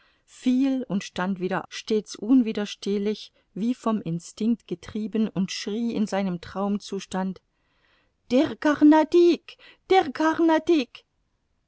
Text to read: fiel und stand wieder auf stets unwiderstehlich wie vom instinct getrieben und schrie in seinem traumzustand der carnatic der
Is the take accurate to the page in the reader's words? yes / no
no